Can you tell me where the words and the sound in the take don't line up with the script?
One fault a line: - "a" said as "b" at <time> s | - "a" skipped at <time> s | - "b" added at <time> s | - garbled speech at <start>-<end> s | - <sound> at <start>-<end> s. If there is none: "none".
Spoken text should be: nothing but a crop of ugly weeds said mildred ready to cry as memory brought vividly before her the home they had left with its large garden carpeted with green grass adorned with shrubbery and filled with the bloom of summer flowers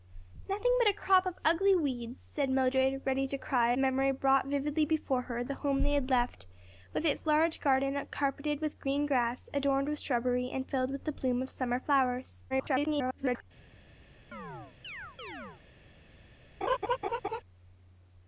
- "as" skipped at 3.8 s
- garbled speech at 12.5-13.4 s
- chirp at 14.3-15.6 s
- laugh at 16.6-17.4 s